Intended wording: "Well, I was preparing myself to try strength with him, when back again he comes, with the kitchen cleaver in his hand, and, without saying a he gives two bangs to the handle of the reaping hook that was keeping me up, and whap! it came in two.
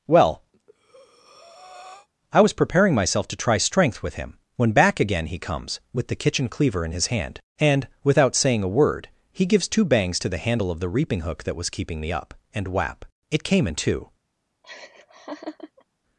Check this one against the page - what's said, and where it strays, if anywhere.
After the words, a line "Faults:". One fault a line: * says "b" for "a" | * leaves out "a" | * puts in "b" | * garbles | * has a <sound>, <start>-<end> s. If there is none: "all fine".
"Well, I was preparing myself to try strength with him, when back again he comes, with the kitchen cleaver in his hand, and, without saying a word, he gives two bangs to the handle of the reaping hook that was keeping me up, and whap! it came in two.
Faults:
* has a breath, 0.5-2.1 s
* puts in "word"
* has a laugh, 14.6-15.8 s